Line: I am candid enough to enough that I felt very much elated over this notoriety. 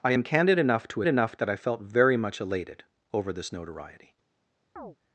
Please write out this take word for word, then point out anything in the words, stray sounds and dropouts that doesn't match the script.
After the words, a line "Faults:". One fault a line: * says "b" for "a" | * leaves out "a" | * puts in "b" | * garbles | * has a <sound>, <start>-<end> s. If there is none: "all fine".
I am candid enough to enough that I felt very much elated over this notoriety.
Faults:
* has a chirp, 4.8-5.0 s